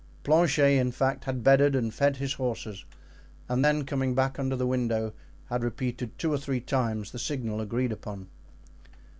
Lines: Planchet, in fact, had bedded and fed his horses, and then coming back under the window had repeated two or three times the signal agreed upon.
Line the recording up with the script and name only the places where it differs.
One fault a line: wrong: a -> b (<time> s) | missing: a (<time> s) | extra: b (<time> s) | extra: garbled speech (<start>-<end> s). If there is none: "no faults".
no faults